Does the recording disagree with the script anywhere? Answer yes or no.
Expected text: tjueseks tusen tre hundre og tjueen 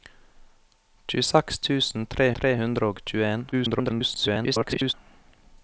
yes